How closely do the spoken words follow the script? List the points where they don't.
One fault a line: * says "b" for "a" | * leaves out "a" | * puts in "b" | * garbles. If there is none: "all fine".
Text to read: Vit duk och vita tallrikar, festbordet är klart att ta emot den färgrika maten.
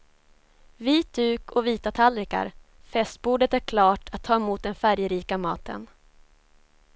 all fine